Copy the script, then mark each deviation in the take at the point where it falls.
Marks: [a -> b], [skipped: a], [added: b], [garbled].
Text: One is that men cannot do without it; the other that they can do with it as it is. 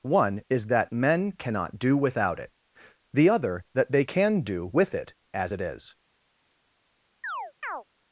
One is that men cannot do without it; the other that they can do with it as it is.